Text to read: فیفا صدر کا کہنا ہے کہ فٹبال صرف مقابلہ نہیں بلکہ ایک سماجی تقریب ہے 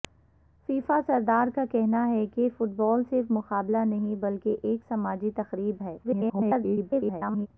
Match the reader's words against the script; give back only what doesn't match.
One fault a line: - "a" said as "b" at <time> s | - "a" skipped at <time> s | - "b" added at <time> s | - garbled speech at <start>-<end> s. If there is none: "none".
- garbled speech at 6.0-7.5 s